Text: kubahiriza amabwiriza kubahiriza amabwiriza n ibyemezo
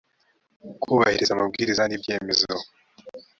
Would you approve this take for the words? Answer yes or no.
no